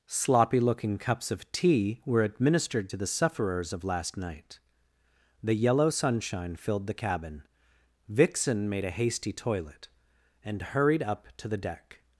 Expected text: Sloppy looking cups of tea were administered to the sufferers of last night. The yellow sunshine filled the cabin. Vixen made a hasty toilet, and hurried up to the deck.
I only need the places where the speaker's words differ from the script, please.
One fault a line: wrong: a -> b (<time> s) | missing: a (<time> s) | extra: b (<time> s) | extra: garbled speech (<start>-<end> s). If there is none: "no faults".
no faults